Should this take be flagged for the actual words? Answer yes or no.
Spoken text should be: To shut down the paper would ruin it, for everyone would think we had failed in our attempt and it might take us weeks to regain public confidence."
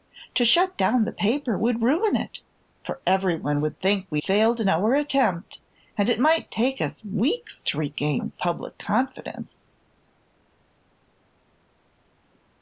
yes